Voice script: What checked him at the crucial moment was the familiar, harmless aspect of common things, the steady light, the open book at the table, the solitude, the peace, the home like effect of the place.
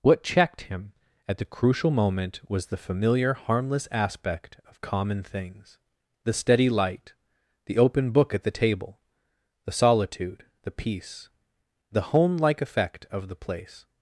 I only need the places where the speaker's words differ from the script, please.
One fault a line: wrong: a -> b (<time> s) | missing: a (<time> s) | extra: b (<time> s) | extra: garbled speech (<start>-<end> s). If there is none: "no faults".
no faults